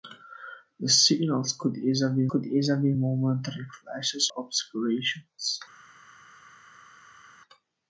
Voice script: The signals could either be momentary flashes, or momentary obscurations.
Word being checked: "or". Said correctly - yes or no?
no